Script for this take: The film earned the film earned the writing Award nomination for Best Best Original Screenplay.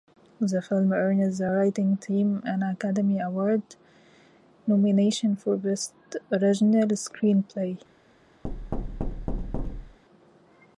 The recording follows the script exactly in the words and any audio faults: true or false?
false